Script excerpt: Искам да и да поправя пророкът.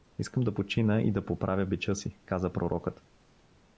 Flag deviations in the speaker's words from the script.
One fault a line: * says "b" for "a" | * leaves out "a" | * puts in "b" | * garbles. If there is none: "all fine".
* puts in "почина"
* puts in "бича си каза"